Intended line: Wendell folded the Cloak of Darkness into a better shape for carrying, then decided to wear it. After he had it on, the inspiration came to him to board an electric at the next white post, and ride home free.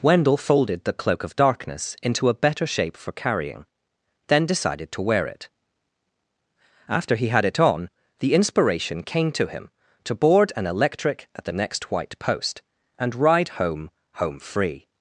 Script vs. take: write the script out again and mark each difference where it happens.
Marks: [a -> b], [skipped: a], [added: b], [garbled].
Wendell folded the Cloak of Darkness into a better shape for carrying, then decided to wear it. After he had it on, the inspiration came to him to board an electric at the next white post, and ride home [added: home] free.